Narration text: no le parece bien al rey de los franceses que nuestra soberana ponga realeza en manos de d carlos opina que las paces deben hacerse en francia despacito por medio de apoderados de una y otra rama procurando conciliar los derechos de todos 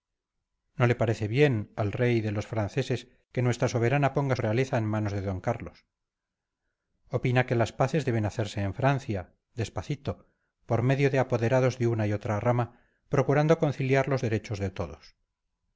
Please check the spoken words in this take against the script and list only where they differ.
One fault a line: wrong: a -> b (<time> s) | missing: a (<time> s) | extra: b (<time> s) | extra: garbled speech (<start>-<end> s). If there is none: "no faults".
no faults